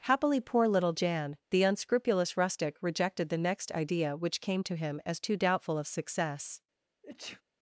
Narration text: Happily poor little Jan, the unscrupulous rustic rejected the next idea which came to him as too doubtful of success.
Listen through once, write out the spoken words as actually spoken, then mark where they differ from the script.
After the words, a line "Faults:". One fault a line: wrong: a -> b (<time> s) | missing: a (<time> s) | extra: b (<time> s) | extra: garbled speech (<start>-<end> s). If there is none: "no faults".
Happily poor little Jan, the unscrupulous rustic rejected the next idea which came to him as too doubtful of success.
Faults:
no faults